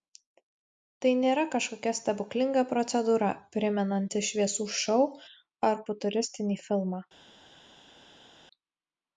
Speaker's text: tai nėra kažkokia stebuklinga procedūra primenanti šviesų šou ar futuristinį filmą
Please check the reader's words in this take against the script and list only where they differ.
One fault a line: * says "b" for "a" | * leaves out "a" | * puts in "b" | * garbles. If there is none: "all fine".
all fine